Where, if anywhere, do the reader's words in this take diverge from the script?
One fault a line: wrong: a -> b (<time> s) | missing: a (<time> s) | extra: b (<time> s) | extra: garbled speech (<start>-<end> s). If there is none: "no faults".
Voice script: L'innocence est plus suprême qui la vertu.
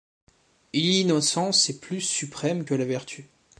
wrong: qui -> que (2.6 s)